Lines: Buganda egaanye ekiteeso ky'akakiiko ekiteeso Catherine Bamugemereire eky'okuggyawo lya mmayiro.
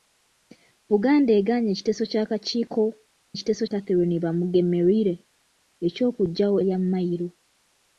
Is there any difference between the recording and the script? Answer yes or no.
no